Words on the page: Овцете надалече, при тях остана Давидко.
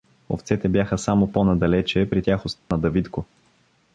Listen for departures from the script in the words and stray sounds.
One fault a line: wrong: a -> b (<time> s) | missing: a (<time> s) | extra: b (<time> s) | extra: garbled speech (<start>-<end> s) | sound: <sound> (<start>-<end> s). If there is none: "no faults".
extra: бяха само по (0.7 s)
sound: dropout (2.6-2.7 s)